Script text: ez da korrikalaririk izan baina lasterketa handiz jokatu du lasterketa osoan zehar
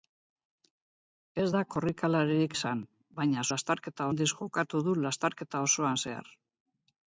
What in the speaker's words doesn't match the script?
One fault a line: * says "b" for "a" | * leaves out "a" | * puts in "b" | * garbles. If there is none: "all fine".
all fine